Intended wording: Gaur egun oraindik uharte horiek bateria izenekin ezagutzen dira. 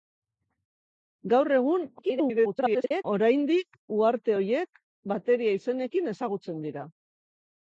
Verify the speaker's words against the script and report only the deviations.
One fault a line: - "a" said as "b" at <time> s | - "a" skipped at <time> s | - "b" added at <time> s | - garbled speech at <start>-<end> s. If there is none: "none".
- garbled speech at 2.0-3.0 s